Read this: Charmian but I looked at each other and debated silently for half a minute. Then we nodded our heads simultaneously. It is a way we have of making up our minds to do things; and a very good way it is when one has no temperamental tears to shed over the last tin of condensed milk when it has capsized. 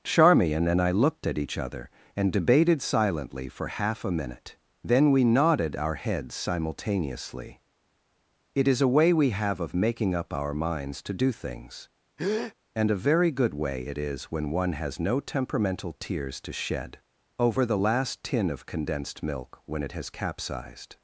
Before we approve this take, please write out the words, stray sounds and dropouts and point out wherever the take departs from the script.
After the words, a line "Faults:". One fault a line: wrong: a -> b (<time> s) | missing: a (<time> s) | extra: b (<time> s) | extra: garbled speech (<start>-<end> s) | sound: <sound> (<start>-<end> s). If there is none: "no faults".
Charmian and I looked at each other and debated silently for half a minute. Then we nodded our heads simultaneously. It is a way we have of making up our minds to do things; and a very good way it is when one has no temperamental tears to shed over the last tin of condensed milk when it has capsized.
Faults:
wrong: but -> and (0.7 s)
sound: breath (12.2-12.5 s)